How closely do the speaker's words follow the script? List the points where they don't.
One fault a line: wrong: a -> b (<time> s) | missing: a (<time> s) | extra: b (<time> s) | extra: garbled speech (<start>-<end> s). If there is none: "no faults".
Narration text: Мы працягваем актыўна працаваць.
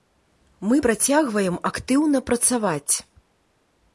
no faults